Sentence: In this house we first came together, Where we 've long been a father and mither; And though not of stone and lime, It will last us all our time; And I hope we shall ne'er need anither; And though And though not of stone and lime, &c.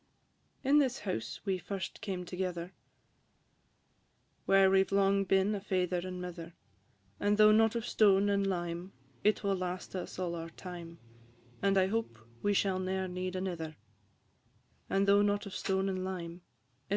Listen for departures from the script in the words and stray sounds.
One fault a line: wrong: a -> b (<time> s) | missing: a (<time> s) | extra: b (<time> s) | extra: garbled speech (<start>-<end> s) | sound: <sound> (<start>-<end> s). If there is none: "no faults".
missing: And though (15.2 s)